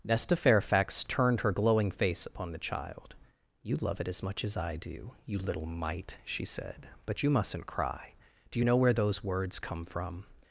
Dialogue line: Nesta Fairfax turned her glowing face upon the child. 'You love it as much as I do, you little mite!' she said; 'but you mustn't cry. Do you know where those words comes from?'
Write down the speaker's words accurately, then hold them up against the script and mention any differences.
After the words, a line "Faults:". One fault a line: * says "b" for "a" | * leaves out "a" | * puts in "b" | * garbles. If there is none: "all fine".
Nesta Fairfax turned her glowing face upon the child. 'You love it as much as I do, you little mite!' she said; 'but you mustn't cry. Do you know where those words come from?'
Faults:
* says "come" for "comes"